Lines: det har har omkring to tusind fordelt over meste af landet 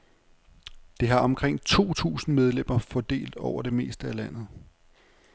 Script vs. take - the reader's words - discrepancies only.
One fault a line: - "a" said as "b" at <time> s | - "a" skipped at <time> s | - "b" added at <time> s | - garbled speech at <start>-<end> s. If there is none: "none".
- "har" skipped at 1.2 s
- "medlemmer" added at 2.4 s
- "det" added at 3.6 s